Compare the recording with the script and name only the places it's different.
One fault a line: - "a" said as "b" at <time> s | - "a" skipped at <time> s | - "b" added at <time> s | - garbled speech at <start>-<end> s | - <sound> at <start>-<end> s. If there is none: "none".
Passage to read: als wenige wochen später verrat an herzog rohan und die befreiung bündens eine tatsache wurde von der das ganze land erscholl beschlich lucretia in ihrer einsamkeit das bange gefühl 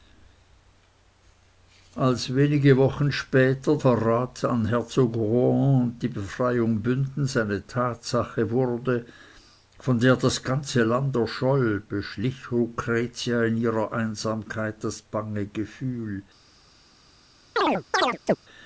- chirp at 17.6-18.4 s